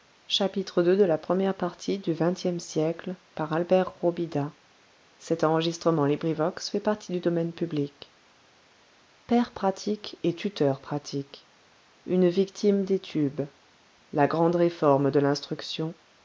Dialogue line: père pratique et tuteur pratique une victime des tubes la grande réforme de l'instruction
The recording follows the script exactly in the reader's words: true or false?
true